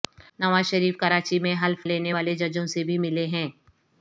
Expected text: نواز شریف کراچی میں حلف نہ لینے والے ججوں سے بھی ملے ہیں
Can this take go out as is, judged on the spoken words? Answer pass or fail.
fail